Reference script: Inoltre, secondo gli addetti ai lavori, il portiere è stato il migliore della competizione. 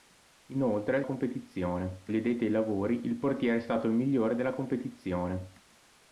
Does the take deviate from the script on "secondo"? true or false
true